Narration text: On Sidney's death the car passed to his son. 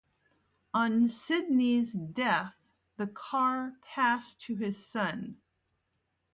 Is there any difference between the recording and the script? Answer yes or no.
no